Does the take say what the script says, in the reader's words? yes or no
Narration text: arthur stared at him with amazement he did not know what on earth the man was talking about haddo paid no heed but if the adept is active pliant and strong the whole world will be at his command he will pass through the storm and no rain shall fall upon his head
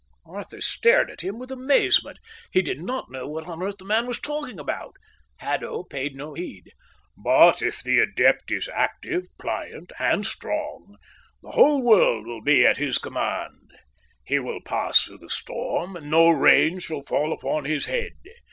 yes